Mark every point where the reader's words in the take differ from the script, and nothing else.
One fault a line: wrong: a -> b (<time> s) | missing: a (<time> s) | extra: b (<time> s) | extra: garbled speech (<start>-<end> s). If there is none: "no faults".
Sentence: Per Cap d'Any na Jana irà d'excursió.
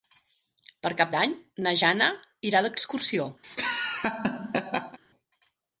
no faults